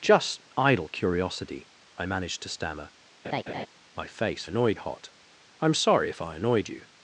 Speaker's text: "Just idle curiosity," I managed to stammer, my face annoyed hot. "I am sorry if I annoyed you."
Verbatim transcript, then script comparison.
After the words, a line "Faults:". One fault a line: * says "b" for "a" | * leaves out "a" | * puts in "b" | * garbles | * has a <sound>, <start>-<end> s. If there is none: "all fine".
"Just idle curiosity," I managed to stammer, my face annoyed hot. "I am sorry if I annoyed you."
Faults:
* has a laugh, 3.2-3.7 s